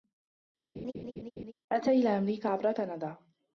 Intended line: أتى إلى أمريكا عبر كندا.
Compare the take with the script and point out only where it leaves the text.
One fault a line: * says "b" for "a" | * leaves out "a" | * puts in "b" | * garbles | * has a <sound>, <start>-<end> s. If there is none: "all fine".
* has a laugh, 0.8-1.5 s